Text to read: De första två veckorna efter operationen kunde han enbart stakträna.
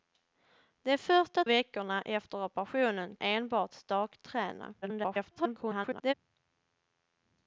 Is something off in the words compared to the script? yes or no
yes